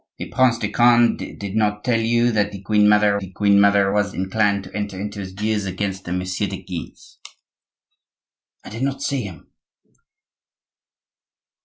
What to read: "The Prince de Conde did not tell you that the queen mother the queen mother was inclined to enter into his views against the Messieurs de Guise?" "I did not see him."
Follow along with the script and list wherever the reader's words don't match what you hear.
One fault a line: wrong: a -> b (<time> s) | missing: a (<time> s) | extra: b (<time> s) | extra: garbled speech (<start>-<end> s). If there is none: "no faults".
no faults